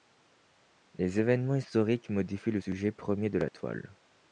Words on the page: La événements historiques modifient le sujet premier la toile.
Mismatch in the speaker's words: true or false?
true